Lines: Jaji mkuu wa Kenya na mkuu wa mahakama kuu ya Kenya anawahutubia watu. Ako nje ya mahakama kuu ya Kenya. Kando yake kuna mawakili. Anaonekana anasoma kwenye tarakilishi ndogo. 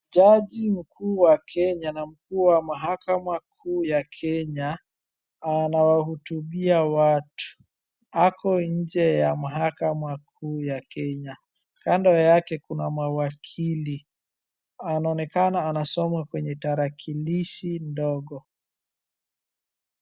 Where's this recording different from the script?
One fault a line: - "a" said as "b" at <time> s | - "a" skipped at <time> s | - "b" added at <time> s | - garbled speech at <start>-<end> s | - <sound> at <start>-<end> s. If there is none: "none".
none